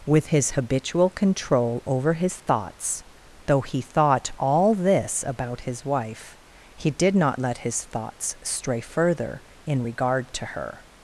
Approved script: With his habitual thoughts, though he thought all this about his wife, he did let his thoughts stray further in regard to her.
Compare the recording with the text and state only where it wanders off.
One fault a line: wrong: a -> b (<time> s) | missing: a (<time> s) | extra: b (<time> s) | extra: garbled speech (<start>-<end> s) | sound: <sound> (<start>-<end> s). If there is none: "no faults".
extra: control over his (1.1 s)
extra: not (7.2 s)